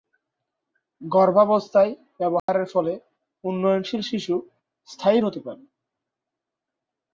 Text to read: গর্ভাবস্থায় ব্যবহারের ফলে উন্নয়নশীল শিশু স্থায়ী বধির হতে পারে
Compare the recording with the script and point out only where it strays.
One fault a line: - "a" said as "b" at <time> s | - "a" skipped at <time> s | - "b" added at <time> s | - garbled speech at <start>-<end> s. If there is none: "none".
- "বধির" skipped at 5.2 s